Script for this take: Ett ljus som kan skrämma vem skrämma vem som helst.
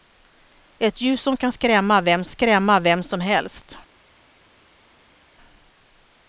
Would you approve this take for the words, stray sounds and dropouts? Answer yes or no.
yes